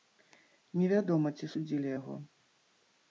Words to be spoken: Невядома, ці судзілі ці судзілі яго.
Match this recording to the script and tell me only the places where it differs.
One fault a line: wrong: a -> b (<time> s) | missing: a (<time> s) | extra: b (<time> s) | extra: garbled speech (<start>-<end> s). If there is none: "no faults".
missing: ці судзілі (1.9 s)